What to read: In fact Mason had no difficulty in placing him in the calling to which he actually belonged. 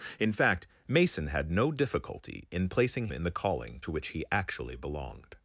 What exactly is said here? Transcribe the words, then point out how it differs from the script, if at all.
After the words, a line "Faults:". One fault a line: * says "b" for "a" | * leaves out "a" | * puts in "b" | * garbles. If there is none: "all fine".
In fact Mason had no difficulty in placing in the calling to which he actually belonged.
Faults:
* leaves out "him"